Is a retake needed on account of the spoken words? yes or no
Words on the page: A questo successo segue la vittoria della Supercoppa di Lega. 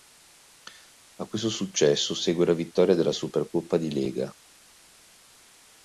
no